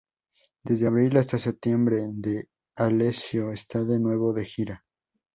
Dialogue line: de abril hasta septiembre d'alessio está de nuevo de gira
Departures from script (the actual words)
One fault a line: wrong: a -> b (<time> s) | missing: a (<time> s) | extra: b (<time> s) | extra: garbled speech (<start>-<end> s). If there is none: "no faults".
wrong: de -> desde (0.6 s)